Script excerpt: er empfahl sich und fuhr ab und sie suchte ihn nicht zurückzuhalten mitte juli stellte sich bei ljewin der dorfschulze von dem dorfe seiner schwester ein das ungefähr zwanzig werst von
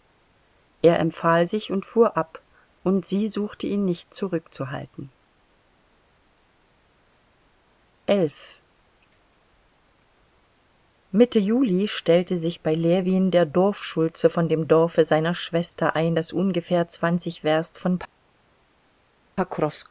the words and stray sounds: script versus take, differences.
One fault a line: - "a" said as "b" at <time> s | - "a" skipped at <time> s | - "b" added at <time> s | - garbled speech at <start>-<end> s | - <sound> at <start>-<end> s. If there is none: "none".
none